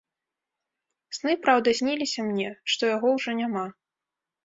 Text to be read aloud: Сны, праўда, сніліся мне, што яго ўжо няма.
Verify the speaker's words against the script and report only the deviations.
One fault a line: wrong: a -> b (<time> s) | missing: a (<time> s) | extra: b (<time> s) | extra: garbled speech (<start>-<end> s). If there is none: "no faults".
no faults